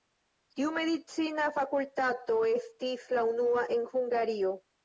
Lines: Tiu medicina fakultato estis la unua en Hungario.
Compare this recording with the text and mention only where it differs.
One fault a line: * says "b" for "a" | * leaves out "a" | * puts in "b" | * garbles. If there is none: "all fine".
all fine